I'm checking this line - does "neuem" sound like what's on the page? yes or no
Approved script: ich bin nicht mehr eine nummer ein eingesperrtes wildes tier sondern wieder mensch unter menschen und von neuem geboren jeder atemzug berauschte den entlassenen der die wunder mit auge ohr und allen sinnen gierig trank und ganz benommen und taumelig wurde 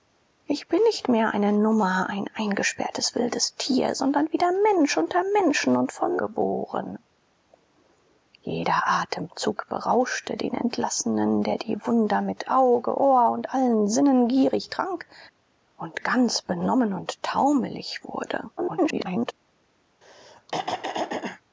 no